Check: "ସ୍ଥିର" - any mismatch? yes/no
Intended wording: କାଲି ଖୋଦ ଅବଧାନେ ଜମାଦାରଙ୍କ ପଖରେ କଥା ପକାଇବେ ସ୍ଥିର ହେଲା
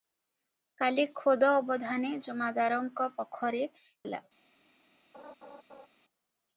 yes